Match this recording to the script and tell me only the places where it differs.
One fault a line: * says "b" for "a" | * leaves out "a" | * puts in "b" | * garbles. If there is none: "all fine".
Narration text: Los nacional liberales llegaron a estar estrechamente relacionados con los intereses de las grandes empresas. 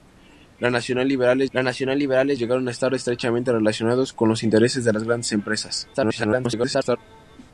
* puts in "los nacional liberales"
* garbles